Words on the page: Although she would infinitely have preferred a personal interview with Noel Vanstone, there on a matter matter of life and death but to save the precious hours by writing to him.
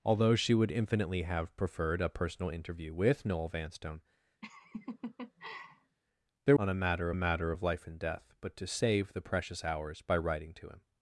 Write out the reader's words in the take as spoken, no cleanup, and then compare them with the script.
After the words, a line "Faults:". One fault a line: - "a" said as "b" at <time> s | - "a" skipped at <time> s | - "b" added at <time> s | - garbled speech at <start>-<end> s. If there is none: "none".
Although she would infinitely have preferred a personal interview with Noel Vanstone, there on a matter matter of life and death but to save the precious hours by writing to him.
Faults:
none